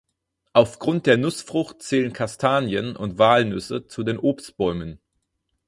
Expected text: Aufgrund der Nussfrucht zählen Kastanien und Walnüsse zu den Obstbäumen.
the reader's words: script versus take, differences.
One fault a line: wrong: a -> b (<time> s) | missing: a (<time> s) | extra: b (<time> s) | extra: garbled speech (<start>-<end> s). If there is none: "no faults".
no faults